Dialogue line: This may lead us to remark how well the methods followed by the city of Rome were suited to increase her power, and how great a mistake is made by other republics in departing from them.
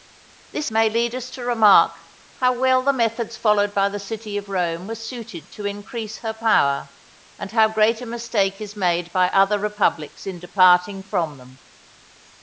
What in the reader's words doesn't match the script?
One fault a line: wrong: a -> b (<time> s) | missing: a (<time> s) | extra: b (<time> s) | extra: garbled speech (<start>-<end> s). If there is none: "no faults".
no faults